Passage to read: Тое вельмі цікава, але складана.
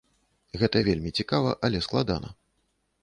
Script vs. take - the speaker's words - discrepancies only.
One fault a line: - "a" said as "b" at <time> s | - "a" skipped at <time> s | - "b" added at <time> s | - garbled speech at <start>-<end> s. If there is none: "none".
- "Тое" said as "Гэта" at 0.6 s